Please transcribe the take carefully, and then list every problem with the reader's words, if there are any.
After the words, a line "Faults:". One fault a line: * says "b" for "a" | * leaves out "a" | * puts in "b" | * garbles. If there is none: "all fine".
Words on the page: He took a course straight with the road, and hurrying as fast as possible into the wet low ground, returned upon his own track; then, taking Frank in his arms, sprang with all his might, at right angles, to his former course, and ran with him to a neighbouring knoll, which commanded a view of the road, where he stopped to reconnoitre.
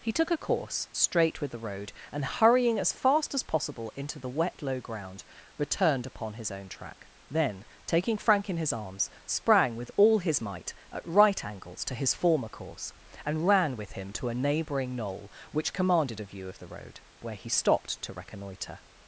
He took a course straight with the road, and hurrying as fast as possible into the wet low ground, returned upon his own track; then, taking Frank in his arms, sprang with all his might, at right angles, to his former course, and ran with him to a neighbouring knoll, which commanded a view of the road, where he stopped to reconnoitre.
Faults:
all fine